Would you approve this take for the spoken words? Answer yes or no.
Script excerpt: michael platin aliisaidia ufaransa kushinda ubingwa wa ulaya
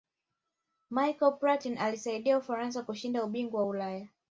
yes